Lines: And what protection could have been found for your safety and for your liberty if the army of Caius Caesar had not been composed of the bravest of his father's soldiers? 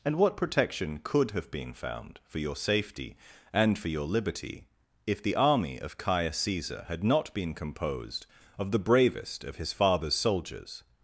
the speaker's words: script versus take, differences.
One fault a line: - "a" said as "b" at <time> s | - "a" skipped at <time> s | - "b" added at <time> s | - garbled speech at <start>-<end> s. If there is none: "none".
none